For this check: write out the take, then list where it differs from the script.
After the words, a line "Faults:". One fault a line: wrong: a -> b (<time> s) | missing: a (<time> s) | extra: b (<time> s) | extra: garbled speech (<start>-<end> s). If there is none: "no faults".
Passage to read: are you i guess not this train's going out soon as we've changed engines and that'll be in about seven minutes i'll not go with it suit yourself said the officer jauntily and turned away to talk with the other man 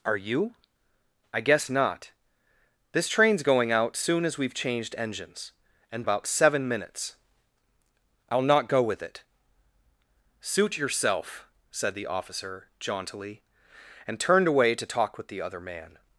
are you i guess not this train's going out soon as we've changed engines and about seven minutes i'll not go with it suit yourself said the officer jauntily and turned away to talk with the other man
Faults:
missing: that'll be in (6.0 s)